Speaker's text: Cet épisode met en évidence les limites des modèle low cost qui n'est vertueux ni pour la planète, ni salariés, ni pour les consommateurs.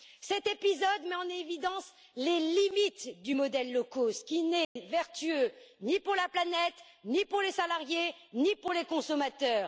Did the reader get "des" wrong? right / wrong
wrong